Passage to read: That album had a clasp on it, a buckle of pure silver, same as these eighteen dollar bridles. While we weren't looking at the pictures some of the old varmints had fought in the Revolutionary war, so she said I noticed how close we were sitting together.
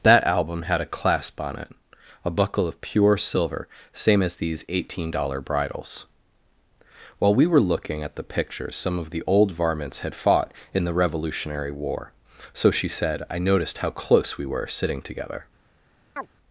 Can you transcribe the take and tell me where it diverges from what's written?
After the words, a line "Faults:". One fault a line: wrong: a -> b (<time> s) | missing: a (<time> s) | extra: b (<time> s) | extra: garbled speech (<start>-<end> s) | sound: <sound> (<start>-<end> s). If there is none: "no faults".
That album had a clasp on it, a buckle of pure silver, same as these eighteen dollar bridles. While we were looking at the pictures some of the old varmints had fought in the Revolutionary war, so she said I noticed how close we were sitting together.
Faults:
wrong: weren't -> were (7.5 s)
sound: chirp (16.2-16.3 s)